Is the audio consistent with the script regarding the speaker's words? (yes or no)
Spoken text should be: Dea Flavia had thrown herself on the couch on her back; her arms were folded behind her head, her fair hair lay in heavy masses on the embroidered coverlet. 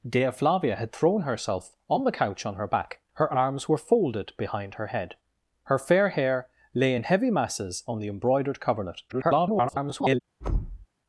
no